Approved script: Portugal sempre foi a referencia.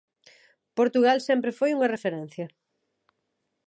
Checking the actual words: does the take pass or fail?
fail